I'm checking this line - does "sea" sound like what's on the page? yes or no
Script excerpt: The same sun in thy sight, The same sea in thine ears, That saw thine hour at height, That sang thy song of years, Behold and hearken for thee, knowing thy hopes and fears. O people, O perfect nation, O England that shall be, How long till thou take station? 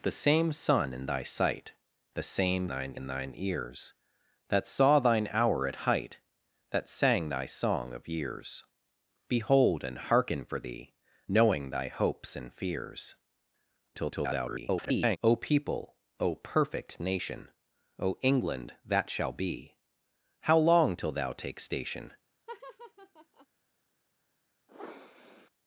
no